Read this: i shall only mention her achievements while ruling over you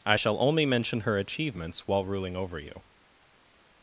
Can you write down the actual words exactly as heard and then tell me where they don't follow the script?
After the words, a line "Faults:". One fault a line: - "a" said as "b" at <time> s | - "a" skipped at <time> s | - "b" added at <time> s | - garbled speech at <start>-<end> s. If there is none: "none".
i shall only mention her achievements while ruling over you
Faults:
none